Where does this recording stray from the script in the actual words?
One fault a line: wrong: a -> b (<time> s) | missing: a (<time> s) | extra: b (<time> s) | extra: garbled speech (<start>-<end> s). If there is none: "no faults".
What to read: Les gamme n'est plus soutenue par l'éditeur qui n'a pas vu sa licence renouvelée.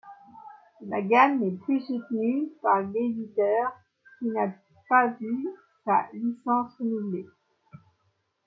wrong: Les -> La (0.9 s)